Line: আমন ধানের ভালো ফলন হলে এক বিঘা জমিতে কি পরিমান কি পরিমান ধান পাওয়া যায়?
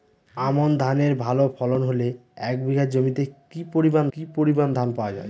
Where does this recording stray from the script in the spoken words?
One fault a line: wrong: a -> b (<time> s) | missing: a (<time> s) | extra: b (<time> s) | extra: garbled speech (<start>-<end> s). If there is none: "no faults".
no faults